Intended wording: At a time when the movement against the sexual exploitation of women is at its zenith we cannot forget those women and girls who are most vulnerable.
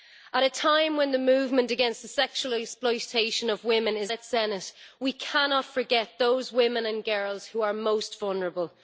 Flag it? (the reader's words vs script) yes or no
yes